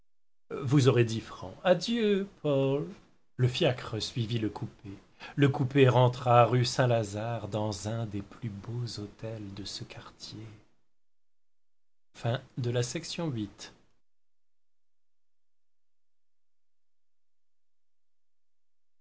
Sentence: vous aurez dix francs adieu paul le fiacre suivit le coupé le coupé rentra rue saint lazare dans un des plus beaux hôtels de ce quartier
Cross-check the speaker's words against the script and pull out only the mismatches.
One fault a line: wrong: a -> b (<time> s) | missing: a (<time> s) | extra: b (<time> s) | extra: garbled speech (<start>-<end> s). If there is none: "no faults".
no faults